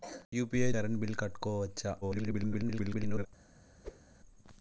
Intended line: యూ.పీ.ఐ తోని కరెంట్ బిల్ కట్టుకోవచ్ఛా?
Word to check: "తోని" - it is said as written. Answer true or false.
false